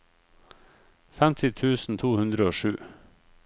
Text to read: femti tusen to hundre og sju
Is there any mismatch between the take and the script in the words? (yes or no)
no